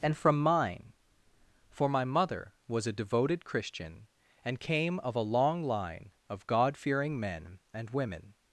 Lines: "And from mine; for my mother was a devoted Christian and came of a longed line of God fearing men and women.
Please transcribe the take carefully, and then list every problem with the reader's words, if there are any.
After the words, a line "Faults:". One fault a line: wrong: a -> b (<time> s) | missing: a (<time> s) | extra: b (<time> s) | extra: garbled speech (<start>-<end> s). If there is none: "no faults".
"And from mine; for my mother was a devoted Christian and came of a long line of God fearing men and women.
Faults:
wrong: longed -> long (5.3 s)